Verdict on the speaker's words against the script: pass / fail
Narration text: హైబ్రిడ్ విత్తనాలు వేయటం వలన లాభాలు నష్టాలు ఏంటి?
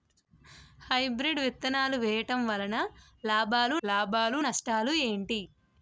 fail